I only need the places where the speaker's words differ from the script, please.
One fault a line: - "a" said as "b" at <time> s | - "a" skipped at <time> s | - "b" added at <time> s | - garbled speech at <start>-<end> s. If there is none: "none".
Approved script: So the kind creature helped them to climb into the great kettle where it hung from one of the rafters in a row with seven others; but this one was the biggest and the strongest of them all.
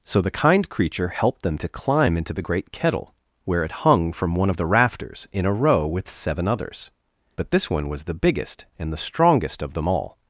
none